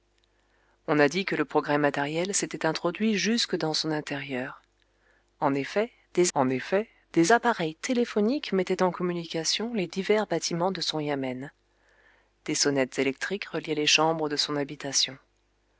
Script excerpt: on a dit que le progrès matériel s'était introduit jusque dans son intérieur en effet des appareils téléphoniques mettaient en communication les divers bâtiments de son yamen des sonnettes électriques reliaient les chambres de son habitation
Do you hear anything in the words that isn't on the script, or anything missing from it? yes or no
yes